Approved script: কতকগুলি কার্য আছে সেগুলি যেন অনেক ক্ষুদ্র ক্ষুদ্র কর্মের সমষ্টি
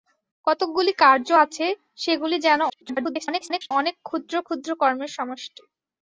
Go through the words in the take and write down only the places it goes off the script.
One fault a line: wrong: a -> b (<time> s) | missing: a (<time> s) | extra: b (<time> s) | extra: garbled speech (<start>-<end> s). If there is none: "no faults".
extra: garbled speech (2.7-3.7 s)